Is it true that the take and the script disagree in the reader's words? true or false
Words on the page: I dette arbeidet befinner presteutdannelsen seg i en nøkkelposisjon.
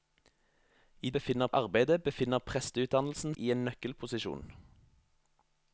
true